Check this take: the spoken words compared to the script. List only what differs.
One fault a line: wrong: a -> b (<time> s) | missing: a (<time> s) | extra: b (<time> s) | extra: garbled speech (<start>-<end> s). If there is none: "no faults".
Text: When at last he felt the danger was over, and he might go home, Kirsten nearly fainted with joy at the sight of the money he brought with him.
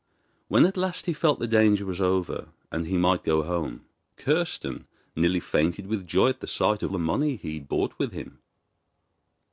no faults